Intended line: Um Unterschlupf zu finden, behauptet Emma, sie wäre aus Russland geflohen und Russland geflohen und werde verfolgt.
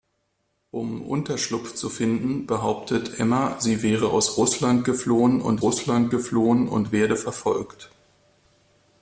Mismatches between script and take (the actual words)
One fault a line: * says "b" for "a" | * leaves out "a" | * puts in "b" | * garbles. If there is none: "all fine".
all fine